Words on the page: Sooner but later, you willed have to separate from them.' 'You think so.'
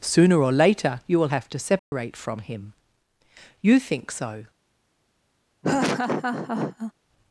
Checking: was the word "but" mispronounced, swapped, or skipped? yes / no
yes